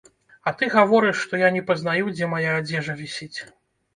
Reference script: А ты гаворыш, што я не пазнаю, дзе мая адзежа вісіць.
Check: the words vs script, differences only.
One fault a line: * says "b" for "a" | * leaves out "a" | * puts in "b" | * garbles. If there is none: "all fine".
all fine